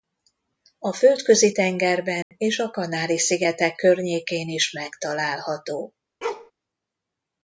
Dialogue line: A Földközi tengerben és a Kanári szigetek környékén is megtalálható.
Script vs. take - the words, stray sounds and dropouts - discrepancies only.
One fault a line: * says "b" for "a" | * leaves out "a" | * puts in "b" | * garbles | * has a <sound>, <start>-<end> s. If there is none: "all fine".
* has a dropout, 2.2-2.3 s
* has a bark, 6.2-6.5 s